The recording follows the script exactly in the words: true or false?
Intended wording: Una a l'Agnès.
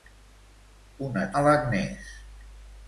true